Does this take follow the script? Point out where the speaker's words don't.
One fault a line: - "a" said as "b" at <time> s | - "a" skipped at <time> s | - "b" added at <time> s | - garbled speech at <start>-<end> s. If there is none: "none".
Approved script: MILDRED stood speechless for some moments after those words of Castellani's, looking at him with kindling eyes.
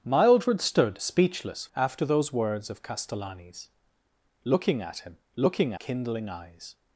- "for some moments" skipped at 1.7 s
- "with" said as "looking" at 5.3 s